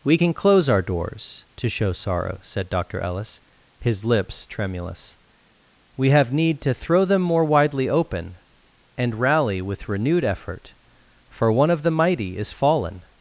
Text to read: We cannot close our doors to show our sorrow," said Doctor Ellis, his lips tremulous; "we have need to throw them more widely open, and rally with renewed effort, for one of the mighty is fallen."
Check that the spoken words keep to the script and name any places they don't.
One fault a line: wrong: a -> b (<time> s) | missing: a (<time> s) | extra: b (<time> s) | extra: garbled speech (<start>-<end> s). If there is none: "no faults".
wrong: cannot -> can (0.1 s)
missing: our (1.9 s)